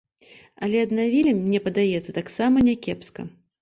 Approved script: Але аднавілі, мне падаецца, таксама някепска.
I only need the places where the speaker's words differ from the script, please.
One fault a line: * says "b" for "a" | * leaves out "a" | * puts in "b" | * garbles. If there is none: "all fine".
all fine